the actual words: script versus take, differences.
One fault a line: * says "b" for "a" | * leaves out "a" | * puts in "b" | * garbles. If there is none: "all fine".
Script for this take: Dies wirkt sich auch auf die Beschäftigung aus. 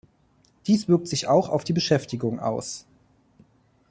all fine